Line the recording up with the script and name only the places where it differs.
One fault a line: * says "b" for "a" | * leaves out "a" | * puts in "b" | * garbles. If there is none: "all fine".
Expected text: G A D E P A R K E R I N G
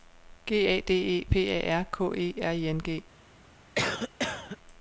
all fine